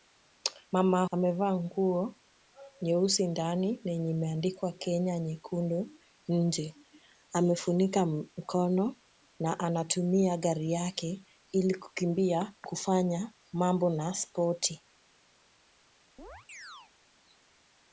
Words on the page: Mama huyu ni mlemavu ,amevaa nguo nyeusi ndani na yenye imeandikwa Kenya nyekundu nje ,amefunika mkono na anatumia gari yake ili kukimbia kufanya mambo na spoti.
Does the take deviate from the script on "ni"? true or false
true